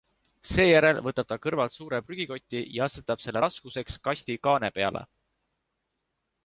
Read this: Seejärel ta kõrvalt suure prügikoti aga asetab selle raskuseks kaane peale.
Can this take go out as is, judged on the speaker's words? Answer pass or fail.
fail